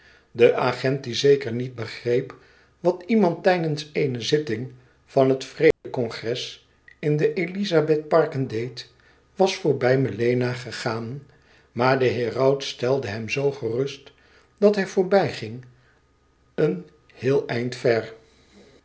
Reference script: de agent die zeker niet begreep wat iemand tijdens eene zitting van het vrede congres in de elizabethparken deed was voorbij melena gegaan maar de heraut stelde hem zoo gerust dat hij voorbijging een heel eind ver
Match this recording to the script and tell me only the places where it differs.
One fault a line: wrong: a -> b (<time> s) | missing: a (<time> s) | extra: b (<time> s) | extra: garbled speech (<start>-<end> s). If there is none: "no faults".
no faults